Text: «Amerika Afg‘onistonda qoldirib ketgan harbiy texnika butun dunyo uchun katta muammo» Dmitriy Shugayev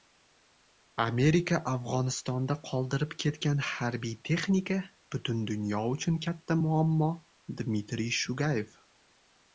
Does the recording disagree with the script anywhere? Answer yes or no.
no